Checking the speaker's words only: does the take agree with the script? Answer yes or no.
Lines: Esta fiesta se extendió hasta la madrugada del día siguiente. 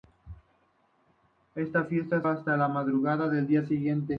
no